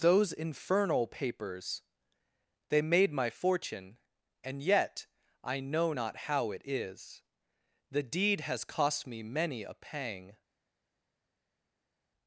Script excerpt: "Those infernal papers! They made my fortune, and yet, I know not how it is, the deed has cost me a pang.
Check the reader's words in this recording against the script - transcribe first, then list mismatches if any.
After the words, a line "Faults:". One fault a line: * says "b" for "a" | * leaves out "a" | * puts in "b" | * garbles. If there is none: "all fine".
"Those infernal papers! They made my fortune, and yet, I know not how it is, the deed has cost me many a pang.
Faults:
* puts in "many"